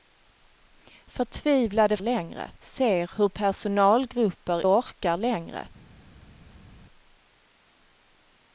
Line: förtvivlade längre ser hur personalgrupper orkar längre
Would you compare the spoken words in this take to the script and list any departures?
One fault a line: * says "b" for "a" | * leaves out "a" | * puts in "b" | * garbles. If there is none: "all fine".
all fine